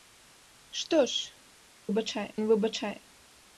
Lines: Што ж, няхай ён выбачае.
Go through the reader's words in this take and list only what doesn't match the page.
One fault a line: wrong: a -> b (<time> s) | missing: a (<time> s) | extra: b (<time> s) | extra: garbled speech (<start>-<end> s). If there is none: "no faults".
wrong: няхай -> выбачае (1.9 s)